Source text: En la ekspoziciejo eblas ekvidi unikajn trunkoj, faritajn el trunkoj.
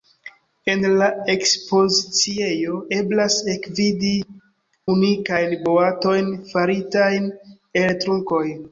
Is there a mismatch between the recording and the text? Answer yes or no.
yes